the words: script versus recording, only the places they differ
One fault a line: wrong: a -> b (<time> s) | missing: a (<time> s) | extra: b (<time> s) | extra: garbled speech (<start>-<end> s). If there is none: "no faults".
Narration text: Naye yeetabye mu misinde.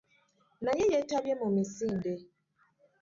no faults